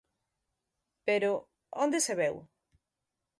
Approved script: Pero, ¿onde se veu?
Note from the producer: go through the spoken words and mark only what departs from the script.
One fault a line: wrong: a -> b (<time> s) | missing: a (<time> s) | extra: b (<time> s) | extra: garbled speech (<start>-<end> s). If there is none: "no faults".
no faults